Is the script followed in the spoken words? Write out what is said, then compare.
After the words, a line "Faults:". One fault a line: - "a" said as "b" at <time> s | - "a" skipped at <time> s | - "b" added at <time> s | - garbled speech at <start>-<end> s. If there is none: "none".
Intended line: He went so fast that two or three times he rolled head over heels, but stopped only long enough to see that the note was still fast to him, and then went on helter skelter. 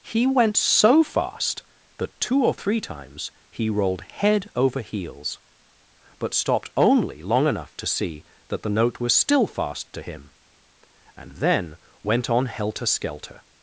He went so fast that two or three times he rolled head over heels, but stopped only long enough to see that the note was still fast to him, and then went on helter skelter.
Faults:
none